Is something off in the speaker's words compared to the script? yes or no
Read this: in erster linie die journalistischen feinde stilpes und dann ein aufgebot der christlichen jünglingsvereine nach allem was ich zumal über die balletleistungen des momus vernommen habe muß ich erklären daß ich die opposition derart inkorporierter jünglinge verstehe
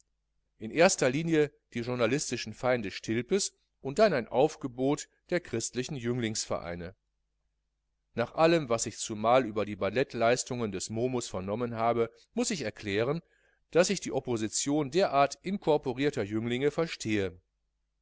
no